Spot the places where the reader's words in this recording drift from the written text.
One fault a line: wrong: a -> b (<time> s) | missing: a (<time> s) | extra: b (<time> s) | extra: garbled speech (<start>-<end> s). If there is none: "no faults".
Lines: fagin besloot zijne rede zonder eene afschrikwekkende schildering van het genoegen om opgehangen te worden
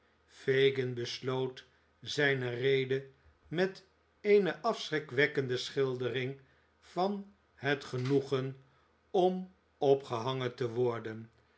wrong: zonder -> met (3.5 s)